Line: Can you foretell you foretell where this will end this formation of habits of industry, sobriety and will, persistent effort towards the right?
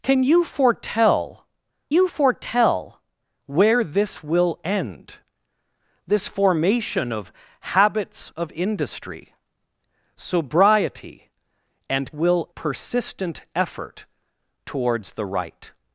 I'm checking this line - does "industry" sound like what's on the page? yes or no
yes